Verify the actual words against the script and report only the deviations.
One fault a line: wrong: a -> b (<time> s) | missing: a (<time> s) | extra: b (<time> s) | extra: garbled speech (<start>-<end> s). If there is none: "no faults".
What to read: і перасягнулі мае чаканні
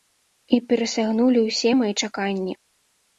extra: ўсе (1.5 s)